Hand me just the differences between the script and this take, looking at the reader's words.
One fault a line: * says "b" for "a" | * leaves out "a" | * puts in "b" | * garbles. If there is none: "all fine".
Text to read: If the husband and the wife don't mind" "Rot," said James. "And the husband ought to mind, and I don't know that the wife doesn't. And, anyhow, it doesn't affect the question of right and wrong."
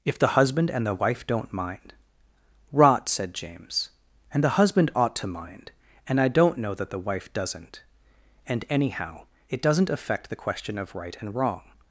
all fine